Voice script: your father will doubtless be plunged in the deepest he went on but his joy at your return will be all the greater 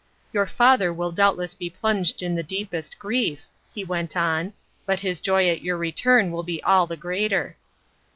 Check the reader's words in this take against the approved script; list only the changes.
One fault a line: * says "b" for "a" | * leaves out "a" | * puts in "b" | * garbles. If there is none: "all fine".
* puts in "grief"